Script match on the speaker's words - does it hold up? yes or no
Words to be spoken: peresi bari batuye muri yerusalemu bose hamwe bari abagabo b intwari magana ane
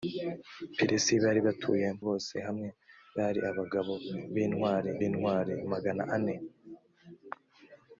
no